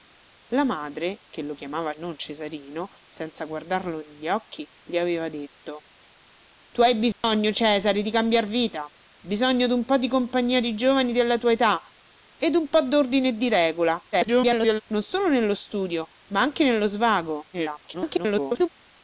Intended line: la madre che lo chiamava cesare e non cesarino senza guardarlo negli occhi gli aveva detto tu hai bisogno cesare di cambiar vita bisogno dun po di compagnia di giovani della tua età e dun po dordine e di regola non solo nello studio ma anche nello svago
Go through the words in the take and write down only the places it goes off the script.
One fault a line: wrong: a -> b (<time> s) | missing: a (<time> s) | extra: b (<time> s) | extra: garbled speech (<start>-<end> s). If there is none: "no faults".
missing: cesare e (1.9 s)
extra: garbled speech (14.1-14.8 s)
extra: garbled speech (17.5-18.7 s)